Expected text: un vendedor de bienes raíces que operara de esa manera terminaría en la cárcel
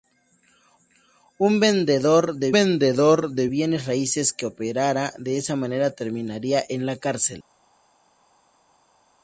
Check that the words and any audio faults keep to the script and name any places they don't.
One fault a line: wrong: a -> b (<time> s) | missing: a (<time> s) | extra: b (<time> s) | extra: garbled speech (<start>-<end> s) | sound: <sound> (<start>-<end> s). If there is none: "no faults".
extra: vendedor de (2.5 s)